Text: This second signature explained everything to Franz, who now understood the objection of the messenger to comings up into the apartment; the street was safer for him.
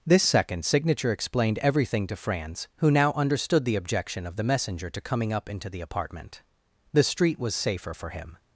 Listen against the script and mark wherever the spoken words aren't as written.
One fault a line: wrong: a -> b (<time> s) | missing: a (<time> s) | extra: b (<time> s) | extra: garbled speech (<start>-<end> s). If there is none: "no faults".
wrong: comings -> coming (5.0 s)